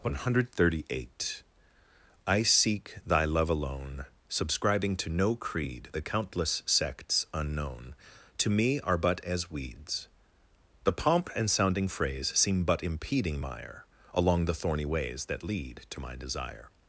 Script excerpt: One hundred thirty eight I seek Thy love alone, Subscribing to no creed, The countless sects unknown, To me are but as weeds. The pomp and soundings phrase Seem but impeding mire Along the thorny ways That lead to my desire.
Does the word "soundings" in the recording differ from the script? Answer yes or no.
yes